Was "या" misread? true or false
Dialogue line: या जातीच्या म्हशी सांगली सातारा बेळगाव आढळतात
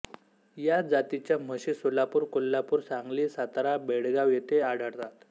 false